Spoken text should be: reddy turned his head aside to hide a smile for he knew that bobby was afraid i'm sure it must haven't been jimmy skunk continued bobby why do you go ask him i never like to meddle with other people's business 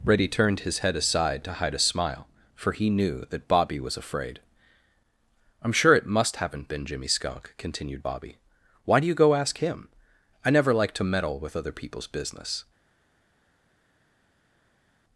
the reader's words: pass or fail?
pass